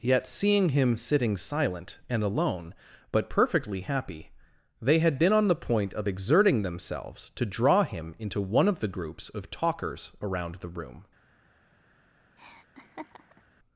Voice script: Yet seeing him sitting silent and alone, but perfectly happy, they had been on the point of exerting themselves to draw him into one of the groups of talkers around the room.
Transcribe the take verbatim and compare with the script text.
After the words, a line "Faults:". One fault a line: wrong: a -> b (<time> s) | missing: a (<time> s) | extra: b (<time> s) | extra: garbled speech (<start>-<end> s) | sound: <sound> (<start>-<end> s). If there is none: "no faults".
Yet seeing him sitting silent and alone, but perfectly happy, they had been on the point of exerting themselves to draw him into one of the groups of talkers around the room.
Faults:
sound: laugh (12.4-13.4 s)